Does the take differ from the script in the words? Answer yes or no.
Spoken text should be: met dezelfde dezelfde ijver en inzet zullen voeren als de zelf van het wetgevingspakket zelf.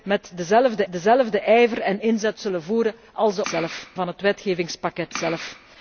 no